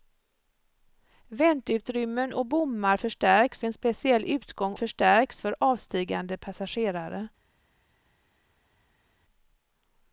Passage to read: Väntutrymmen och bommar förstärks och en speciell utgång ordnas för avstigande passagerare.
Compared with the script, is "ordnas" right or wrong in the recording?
wrong